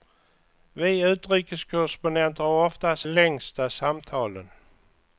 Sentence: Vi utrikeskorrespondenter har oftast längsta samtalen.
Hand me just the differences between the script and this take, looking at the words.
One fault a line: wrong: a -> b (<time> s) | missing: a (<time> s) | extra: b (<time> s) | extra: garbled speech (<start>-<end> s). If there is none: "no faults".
no faults